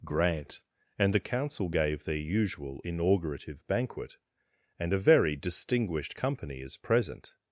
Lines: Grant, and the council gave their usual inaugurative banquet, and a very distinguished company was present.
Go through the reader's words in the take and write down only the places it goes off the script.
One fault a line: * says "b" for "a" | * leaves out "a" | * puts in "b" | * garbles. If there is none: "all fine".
* says "is" for "was"